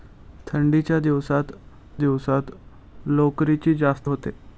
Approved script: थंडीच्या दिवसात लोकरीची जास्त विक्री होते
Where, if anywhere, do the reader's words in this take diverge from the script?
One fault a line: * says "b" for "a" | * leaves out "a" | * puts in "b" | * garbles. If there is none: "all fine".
* puts in "दिवसात"
* leaves out "विक्री"